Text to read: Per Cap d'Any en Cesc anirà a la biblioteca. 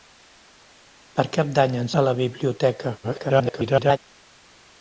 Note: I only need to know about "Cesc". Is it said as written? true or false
false